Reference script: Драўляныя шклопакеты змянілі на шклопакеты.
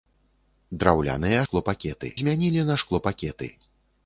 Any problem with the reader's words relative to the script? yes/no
no